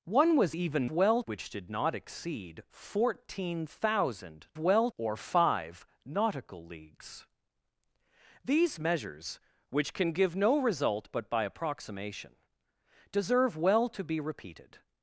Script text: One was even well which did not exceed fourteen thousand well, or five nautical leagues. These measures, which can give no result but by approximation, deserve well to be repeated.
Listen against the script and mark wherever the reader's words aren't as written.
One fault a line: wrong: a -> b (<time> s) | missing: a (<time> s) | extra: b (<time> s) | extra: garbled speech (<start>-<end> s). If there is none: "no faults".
no faults